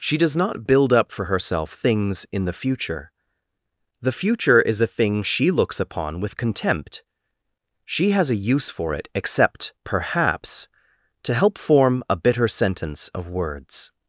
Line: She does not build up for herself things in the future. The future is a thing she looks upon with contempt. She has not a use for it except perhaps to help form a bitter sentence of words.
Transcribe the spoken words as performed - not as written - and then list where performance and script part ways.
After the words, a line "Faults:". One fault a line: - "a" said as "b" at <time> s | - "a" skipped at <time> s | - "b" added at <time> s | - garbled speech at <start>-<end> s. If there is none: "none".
She does not build up for herself things in the future. The future is a thing she looks upon with contempt. She has a use for it except perhaps to help form a bitter sentence of words.
Faults:
- "not" skipped at 8.3 s